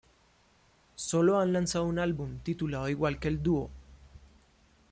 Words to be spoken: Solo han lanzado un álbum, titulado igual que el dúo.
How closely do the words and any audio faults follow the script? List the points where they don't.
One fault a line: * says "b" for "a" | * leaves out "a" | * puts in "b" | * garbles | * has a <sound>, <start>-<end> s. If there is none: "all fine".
all fine